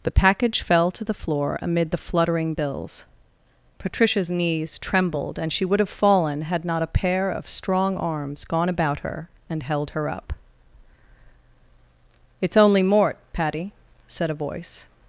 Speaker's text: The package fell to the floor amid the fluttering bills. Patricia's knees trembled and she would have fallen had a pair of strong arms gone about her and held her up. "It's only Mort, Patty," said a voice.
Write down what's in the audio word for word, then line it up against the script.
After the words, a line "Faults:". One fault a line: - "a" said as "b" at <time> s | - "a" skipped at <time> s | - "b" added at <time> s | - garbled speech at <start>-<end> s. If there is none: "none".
The package fell to the floor amid the fluttering bills. Patricia's knees trembled and she would have fallen had not a pair of strong arms gone about her and held her up. "It's only Mort, Patty," said a voice.
Faults:
- "not" added at 6.6 s